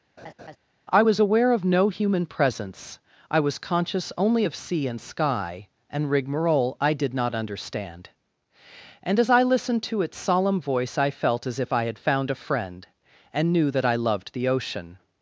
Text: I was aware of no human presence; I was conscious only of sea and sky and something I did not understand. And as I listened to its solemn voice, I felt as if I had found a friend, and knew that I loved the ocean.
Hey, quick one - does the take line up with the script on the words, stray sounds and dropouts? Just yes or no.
no